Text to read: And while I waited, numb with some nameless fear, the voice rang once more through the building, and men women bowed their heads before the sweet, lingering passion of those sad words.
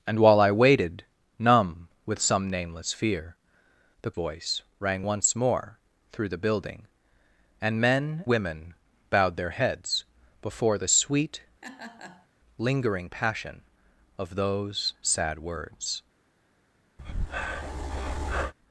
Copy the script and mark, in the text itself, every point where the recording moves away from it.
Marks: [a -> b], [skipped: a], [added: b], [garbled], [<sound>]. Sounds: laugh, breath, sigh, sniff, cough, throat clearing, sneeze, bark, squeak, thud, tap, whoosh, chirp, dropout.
And while I waited, numb with some nameless fear, the voice rang once more through the building, and men women bowed their heads before the sweet, [laugh] lingering passion of those sad words. [breath]